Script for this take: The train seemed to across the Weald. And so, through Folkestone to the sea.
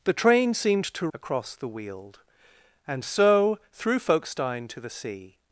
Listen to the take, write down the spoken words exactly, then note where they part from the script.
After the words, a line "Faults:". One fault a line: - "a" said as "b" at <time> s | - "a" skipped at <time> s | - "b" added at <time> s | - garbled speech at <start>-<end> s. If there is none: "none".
The train seemed to across the Weald. And so, through Folkestone to the sea.
Faults:
none